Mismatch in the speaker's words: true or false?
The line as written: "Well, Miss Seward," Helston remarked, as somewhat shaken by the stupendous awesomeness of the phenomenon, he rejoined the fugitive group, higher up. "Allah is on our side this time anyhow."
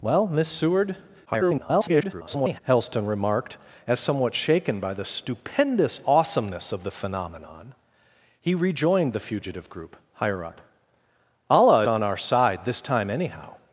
true